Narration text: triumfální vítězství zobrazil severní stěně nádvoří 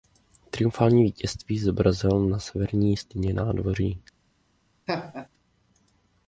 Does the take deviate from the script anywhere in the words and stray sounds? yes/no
yes